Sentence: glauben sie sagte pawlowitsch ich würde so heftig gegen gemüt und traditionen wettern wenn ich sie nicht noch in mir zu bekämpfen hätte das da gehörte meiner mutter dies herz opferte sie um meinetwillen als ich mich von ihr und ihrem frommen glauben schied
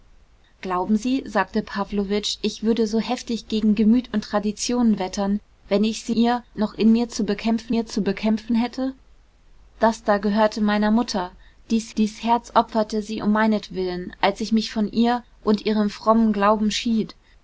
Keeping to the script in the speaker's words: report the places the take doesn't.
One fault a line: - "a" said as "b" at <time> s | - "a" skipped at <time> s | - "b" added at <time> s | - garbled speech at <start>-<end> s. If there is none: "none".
- "nicht" said as "ihr" at 6.1 s
- "mir zu bekämpfen" added at 7.7 s
- "dies" added at 12.0 s